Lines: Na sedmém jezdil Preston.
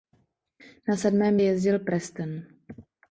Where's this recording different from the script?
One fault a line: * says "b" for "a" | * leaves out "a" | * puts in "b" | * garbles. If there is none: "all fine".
all fine